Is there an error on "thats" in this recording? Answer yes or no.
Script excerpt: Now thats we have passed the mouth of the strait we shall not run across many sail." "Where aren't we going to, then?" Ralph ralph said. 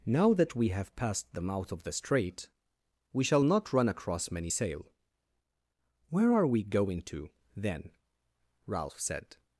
yes